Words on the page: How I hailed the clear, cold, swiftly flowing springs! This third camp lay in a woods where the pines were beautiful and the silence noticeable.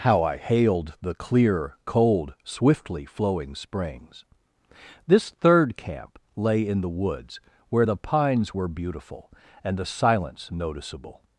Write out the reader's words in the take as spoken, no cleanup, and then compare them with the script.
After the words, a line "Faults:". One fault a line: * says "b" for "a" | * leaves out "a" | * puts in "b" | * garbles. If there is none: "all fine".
How I hailed the clear, cold, swiftly flowing springs! This third camp lay in the woods where the pines were beautiful and the silence noticeable.
Faults:
* says "the" for "a"